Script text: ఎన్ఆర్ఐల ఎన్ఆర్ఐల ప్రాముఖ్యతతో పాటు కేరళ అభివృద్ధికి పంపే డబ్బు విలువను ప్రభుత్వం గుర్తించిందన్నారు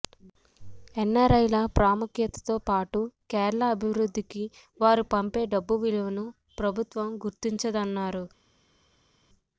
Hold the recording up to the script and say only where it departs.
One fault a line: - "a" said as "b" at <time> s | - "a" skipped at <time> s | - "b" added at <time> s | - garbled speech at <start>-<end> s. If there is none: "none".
- "ఎన్ఆర్ఐల" skipped at 1.6 s
- "వారు" added at 4.8 s